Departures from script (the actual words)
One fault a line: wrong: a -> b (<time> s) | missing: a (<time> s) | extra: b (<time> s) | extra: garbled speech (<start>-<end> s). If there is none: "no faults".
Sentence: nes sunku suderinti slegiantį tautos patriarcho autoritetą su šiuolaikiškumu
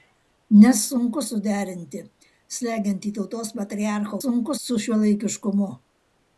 wrong: autoritetą -> sunku (4.2 s)